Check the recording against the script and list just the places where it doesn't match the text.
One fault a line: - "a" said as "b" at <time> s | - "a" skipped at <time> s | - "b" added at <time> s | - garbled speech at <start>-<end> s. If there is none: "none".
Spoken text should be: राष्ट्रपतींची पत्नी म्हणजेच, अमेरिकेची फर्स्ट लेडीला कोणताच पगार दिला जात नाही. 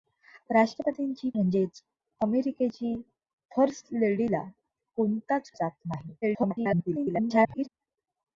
- "पत्नी" skipped at 1.3 s
- "पगार दिला" skipped at 5.5 s
- garbled speech at 6.2-7.7 s